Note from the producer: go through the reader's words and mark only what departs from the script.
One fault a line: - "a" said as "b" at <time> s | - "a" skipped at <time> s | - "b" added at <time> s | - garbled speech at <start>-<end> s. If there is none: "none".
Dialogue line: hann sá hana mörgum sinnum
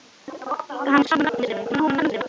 - "hana" skipped at 1.1 s
- garbled speech at 1.6-2.3 s